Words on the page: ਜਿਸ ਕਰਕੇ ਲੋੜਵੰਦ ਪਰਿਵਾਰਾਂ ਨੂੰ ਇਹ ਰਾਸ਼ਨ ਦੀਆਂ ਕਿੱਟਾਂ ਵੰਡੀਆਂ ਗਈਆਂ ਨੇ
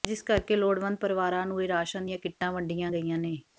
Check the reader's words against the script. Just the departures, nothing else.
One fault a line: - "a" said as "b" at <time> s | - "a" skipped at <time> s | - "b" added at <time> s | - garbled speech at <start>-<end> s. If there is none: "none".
none